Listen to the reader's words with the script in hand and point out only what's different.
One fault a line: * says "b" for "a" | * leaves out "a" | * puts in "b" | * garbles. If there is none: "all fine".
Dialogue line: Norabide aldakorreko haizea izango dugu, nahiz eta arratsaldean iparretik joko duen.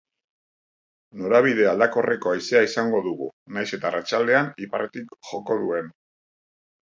all fine